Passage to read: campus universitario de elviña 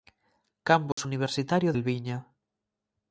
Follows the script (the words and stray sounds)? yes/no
no